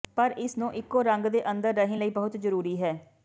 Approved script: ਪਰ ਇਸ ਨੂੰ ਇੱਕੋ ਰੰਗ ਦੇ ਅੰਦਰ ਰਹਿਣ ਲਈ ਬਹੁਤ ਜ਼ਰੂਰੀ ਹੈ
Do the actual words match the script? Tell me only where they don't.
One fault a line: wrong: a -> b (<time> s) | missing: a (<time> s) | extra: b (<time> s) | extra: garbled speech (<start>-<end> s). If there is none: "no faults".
no faults